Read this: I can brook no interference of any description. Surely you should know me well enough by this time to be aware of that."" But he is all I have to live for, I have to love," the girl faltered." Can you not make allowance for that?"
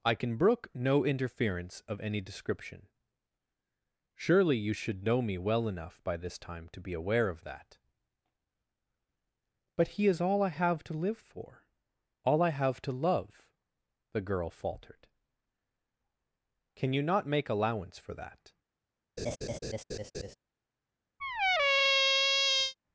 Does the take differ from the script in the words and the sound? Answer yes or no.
yes